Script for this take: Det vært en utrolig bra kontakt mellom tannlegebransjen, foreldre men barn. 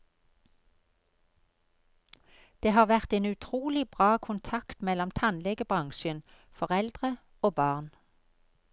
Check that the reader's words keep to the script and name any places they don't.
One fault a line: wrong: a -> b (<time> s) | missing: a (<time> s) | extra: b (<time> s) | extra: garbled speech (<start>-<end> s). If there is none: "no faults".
extra: har (2.7 s)
wrong: men -> og (7.4 s)